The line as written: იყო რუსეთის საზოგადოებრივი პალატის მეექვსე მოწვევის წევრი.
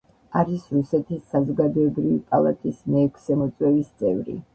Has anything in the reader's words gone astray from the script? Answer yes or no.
yes